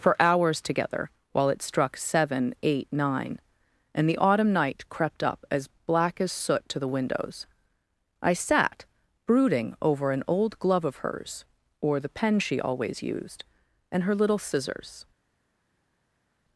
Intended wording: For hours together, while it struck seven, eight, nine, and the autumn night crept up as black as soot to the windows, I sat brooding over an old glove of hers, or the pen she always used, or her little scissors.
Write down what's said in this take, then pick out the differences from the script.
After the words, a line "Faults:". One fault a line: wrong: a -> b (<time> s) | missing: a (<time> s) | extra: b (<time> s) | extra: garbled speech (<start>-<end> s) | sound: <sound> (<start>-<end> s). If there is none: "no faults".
For hours together, while it struck seven, eight, nine, and the autumn night crept up as black as soot to the windows, I sat brooding over an old glove of hers, or the pen she always used, and her little scissors.
Faults:
wrong: or -> and (13.9 s)